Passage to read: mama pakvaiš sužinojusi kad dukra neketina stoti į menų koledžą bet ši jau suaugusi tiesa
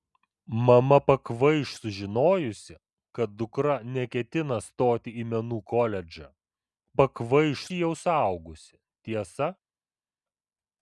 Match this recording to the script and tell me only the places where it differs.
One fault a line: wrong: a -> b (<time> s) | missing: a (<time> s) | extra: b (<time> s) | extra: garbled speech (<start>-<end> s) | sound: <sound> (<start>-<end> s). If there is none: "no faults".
wrong: bet -> pakvaiš (7.0 s)